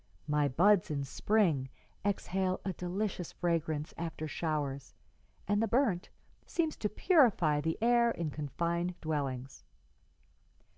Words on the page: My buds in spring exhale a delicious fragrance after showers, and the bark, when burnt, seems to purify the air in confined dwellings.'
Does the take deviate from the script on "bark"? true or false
true